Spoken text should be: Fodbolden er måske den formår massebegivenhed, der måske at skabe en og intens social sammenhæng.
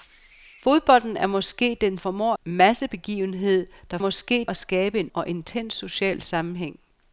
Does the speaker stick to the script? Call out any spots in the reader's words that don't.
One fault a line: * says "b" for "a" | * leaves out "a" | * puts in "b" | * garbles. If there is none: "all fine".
all fine